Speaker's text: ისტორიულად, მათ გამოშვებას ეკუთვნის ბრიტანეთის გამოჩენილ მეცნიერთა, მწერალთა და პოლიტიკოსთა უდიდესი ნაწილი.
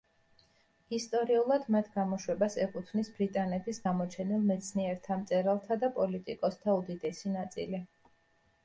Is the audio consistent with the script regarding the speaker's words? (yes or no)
yes